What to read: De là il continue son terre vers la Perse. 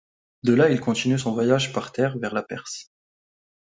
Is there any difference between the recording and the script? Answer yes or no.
yes